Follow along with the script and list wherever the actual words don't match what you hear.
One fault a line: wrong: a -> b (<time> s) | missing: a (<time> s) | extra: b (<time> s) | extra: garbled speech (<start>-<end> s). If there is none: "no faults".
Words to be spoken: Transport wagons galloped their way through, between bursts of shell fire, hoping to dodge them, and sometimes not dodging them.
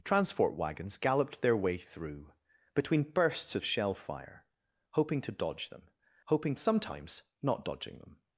wrong: and -> hoping (6.2 s)